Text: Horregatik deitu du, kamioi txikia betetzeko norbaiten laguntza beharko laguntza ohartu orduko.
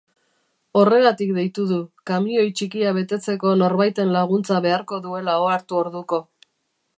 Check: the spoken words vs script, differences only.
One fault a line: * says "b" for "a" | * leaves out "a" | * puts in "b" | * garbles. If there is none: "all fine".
* says "duela" for "laguntza"